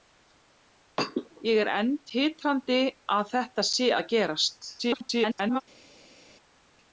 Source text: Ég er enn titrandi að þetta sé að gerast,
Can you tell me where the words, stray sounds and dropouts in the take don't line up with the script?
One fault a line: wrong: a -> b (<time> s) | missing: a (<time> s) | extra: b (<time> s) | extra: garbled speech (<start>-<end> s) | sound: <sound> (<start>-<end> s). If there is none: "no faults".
extra: garbled speech (4.8-5.6 s)